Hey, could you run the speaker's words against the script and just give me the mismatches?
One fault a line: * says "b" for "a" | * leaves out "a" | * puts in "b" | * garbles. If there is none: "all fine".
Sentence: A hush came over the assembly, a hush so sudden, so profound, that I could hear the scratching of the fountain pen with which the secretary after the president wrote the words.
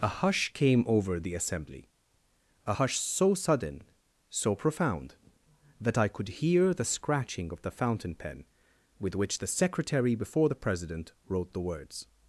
* says "before" for "after"